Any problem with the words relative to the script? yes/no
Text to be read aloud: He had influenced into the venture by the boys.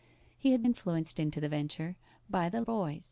no